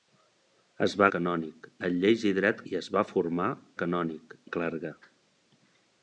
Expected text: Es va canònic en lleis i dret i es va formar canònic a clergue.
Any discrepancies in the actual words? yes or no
no